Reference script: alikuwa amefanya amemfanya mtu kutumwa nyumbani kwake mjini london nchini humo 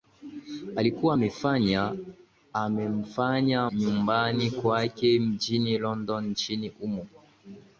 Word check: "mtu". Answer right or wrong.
wrong